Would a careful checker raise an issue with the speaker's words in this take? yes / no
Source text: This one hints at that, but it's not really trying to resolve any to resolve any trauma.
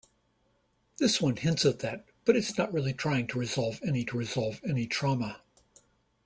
no